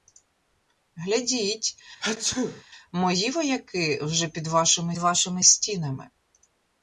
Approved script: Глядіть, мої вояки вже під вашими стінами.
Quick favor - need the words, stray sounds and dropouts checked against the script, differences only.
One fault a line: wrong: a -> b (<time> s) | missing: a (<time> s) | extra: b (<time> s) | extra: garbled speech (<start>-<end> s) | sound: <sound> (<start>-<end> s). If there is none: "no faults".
sound: sneeze (2.0-2.6 s)
extra: вашими (5.0 s)